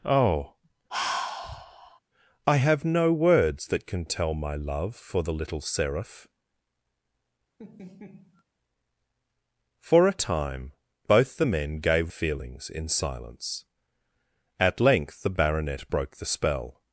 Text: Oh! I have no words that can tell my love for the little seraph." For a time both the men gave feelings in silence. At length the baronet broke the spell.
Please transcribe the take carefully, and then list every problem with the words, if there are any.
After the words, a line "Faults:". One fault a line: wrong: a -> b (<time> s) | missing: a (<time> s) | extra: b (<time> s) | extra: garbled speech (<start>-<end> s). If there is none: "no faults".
Oh! I have no words that can tell my love for the little seraph." For a time both the men gave feelings in silence. At length the baronet broke the spell.
Faults:
no faults